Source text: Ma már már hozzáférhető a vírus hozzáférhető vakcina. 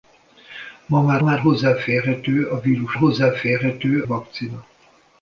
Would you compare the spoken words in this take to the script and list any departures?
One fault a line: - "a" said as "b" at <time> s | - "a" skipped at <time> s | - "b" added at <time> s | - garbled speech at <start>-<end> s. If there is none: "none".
none